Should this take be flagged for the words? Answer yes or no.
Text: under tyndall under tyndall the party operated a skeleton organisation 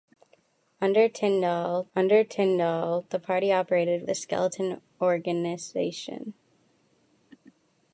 no